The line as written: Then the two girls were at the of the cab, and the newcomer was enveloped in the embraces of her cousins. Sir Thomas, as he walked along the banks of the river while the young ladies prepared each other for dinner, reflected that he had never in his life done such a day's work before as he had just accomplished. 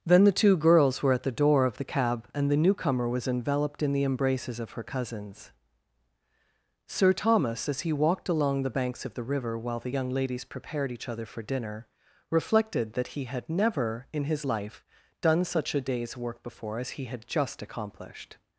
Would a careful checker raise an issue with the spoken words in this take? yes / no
yes